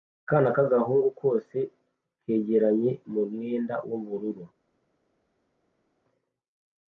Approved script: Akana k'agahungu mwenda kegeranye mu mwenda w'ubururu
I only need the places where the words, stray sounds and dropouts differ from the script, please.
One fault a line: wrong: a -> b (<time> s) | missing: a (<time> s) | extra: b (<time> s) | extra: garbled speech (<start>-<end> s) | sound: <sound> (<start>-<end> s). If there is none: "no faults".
wrong: mwenda -> kose (1.2 s)